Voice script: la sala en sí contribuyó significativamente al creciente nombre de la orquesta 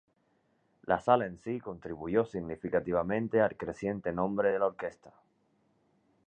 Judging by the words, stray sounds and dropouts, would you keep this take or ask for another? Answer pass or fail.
pass